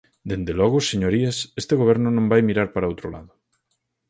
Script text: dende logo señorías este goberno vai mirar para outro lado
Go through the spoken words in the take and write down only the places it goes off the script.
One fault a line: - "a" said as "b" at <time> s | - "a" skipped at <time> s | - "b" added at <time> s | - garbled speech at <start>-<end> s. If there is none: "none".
- "non" added at 2.1 s